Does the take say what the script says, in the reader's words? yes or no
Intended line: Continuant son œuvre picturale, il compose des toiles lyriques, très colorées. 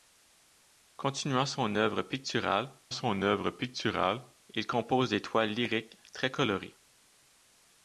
no